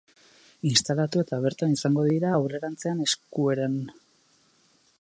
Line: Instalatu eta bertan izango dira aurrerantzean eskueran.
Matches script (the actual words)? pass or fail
pass